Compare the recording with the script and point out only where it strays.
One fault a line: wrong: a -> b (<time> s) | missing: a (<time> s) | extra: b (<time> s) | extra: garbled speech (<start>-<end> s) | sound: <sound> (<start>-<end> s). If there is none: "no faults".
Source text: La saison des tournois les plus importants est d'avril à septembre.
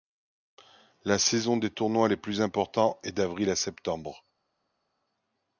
no faults